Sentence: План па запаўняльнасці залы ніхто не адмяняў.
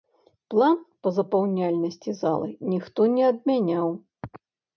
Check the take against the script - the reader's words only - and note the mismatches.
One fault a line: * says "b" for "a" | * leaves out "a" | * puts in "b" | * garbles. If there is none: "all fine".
all fine